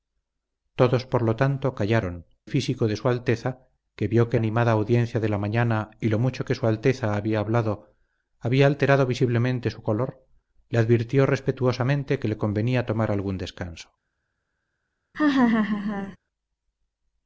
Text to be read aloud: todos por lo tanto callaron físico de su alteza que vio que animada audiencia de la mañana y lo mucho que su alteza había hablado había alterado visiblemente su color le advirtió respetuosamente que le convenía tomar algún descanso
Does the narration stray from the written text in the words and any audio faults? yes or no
yes